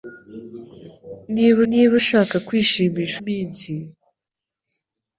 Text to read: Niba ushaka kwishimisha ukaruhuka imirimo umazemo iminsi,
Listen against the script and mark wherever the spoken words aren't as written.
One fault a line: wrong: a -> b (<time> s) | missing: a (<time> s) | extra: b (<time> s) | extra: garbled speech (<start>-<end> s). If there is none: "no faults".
extra: niba (1.7 s)
missing: ukaruhuka imirimo umazemo (3.2 s)